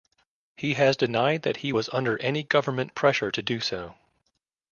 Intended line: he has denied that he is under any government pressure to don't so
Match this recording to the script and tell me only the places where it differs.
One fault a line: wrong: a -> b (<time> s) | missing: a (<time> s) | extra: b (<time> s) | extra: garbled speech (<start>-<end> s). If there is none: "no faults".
wrong: is -> was (1.7 s)
wrong: don't -> do (3.4 s)